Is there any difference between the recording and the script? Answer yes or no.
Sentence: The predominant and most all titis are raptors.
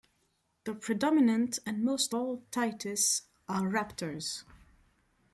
no